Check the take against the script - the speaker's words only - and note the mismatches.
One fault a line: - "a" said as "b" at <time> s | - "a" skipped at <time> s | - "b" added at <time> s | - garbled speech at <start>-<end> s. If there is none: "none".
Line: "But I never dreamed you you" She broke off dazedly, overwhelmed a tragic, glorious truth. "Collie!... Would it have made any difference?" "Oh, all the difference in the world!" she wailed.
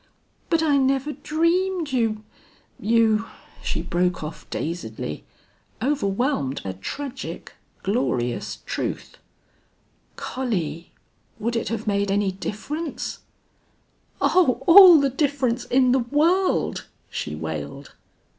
none